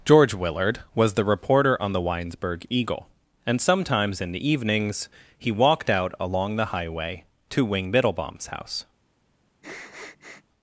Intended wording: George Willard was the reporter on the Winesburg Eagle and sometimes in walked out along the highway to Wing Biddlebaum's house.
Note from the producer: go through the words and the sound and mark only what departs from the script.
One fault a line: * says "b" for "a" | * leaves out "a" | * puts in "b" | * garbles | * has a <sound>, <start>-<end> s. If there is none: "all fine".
* puts in "the evenings he"
* has a sniff, 9.6-10.4 s